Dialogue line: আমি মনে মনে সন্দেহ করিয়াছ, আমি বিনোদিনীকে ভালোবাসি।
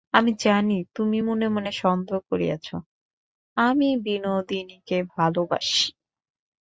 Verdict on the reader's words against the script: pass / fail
fail